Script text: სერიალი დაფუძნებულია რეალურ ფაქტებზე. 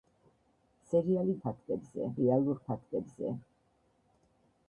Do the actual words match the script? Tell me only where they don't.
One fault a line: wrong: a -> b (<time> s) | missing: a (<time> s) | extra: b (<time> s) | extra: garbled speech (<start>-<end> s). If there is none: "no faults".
wrong: დაფუძნებულია -> ფაქტებზე (1.5 s)